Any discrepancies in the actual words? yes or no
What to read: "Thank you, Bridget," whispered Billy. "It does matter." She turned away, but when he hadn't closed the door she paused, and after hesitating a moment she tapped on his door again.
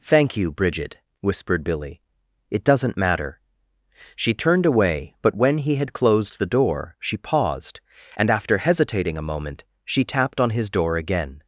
yes